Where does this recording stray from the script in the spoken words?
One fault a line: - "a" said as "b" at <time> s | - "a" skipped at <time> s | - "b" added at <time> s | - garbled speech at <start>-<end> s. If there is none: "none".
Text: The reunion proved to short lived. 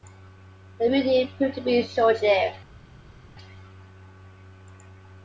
- "be" added at 1.6 s